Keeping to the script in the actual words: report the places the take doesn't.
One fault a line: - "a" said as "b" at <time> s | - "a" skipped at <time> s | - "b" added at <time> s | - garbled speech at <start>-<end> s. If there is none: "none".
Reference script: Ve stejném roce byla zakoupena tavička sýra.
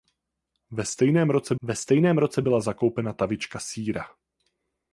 - "ve stejném roce" added at 1.6 s